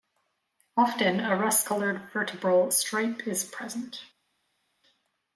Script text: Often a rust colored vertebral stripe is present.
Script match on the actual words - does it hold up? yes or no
yes